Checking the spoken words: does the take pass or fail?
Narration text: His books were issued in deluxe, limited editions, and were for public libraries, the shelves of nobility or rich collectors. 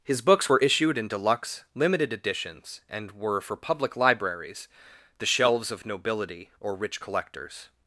pass